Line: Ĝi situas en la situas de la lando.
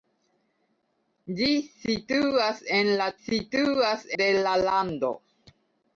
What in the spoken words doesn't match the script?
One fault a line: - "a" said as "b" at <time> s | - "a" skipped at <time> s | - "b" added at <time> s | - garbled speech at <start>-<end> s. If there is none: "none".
none